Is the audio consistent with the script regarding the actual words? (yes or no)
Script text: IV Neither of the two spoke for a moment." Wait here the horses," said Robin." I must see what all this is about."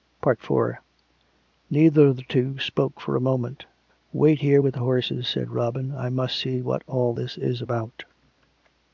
no